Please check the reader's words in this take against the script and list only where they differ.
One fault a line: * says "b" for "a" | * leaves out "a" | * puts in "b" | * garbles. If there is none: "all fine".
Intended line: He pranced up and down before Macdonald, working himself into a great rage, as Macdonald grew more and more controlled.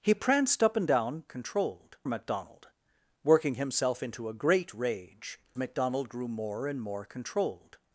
* says "controlled" for "before"
* leaves out "as"